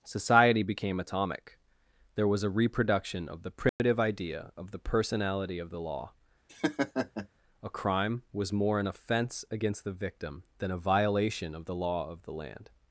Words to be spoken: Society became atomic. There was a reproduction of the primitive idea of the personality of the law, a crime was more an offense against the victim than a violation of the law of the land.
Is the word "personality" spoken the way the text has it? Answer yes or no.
yes